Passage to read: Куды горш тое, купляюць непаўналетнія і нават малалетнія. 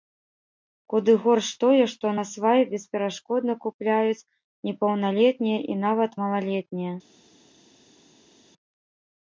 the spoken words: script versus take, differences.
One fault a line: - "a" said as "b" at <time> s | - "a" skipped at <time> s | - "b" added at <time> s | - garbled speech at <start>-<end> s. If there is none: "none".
- "што насвай бесперашкодна" added at 1.9 s